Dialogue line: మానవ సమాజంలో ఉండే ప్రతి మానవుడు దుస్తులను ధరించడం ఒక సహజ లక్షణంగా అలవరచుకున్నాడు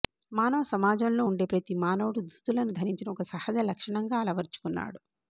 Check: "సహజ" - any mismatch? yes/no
no